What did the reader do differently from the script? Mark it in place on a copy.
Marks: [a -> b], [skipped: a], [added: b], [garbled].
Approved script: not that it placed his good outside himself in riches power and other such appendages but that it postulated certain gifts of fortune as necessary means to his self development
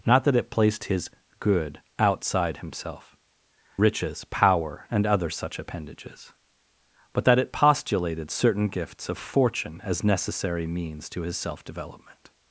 not that it placed his good outside himself [skipped: in] riches power and other such appendages but that it postulated certain gifts of fortune as necessary means to his self development